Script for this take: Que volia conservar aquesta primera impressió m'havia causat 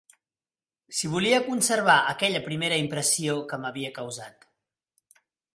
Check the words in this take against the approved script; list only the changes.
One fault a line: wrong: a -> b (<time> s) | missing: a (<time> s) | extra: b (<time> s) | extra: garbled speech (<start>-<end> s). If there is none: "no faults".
wrong: Que -> Si (1.0 s)
wrong: aquesta -> aquella (2.1 s)
extra: que (3.5 s)